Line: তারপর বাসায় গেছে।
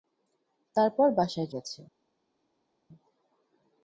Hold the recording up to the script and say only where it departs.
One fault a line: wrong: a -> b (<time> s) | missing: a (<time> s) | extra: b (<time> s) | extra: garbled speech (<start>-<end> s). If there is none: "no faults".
no faults